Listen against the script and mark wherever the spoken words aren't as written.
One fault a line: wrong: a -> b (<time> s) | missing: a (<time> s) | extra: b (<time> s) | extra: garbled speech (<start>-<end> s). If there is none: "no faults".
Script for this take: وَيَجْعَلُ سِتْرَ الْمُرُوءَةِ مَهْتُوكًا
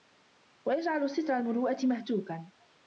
no faults